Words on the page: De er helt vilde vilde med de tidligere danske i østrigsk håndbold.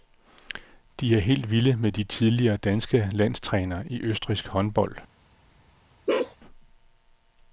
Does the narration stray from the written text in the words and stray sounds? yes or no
yes